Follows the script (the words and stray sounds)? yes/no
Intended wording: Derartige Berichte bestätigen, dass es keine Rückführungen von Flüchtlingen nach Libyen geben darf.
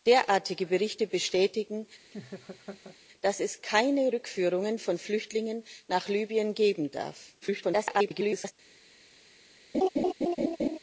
no